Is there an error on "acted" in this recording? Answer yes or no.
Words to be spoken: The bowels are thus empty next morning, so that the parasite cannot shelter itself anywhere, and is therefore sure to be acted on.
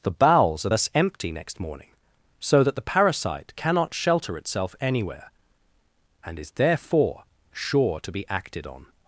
no